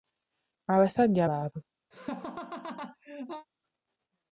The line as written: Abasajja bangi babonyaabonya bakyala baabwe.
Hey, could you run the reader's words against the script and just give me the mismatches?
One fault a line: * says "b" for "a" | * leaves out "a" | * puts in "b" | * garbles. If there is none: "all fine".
* leaves out "bangi babonyaabonya bakyala"